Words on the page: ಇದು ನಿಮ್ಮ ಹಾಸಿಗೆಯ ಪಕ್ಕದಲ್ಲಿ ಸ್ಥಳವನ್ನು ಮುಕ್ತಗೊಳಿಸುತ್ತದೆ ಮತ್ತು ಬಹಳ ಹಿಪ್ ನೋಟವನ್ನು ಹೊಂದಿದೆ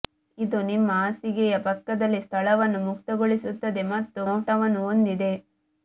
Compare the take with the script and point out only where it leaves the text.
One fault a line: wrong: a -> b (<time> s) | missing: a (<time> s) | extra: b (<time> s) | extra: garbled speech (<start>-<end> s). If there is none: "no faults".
missing: ಬಹಳ ಹಿಪ್ (4.2 s)